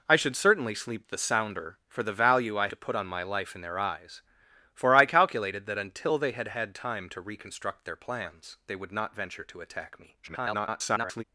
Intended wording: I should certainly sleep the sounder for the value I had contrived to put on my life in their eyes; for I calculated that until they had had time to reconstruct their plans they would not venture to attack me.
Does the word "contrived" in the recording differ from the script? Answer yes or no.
yes